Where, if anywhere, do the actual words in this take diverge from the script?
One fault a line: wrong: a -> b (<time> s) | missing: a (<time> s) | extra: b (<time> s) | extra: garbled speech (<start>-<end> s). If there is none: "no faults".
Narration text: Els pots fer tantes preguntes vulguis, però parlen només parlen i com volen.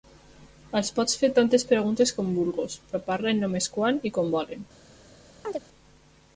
extra: com (2.2 s)
wrong: parlen -> quan (3.7 s)